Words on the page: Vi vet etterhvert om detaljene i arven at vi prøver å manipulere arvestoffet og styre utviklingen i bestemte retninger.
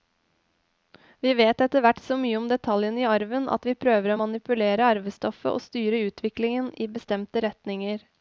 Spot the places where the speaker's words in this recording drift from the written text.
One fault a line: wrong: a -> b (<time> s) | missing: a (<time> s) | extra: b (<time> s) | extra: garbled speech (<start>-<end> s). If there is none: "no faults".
extra: så mye (2.0 s)